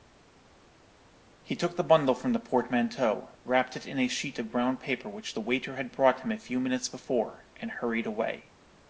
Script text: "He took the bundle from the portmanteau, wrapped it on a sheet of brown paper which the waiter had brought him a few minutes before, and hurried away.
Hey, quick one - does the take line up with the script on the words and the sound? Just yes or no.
no